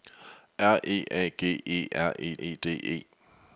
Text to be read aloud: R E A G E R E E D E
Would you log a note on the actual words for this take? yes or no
no